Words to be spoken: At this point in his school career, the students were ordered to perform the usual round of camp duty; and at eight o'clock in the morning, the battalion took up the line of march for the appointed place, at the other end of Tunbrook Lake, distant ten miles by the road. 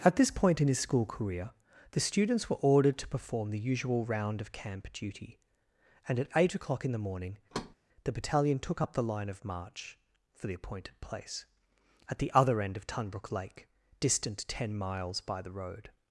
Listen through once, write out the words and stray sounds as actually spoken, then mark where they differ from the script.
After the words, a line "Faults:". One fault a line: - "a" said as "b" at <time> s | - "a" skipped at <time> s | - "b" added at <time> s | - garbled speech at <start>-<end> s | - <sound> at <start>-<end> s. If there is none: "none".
At this point in his school career, the students were ordered to perform the usual round of camp duty; and at eight o'clock in the morning, the battalion took up the line of march for the appointed place, at the other end of Tunbrook Lake, distant ten miles by the road.
Faults:
- thud at 7.5-7.8 s